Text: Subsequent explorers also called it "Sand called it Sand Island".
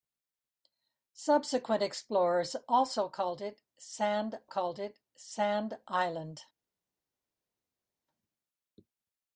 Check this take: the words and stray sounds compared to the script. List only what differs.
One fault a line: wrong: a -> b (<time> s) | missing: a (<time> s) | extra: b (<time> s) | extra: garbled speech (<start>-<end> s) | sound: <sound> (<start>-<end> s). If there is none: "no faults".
no faults